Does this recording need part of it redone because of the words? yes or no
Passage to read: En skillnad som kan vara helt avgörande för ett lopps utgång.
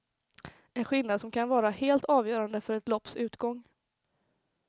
no